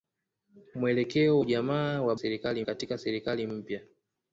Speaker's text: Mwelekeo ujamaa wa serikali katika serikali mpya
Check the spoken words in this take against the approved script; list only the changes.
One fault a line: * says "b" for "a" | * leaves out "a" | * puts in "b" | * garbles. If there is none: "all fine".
all fine